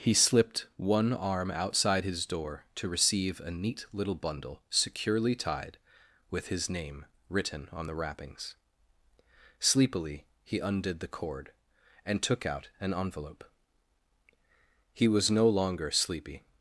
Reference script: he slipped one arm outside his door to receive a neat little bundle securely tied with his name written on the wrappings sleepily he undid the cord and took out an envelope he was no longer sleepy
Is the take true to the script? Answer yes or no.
yes